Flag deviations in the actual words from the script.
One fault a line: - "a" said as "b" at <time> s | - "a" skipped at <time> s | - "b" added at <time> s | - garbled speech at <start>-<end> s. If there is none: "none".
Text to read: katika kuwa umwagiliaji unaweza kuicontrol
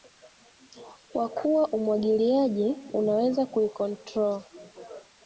- "katika" said as "kwa" at 1.1 s